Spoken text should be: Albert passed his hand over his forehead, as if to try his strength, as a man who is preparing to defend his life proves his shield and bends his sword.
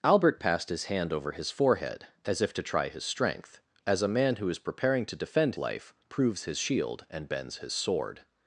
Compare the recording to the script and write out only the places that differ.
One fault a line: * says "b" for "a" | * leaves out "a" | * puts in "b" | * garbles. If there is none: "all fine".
* leaves out "his"